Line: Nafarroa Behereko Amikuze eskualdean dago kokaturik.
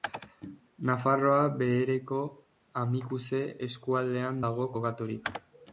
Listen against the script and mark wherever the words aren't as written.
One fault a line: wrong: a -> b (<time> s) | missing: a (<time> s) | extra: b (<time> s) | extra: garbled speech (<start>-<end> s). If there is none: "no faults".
no faults